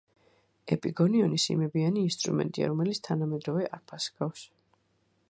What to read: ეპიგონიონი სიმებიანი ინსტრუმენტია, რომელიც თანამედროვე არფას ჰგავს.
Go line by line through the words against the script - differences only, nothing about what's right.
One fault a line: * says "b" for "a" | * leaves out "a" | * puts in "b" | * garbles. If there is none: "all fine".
all fine